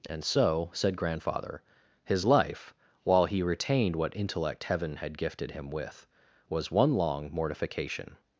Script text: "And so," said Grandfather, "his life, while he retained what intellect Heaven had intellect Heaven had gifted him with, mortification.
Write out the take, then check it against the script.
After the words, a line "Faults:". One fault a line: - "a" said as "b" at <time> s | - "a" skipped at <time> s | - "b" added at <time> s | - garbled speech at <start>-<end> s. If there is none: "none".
"And so," said Grandfather, "his life, while he retained what intellect Heaven had gifted him with, was one long mortification.
Faults:
- "intellect Heaven had gifted him with" said as "gifted him with was one long" at 5.2 s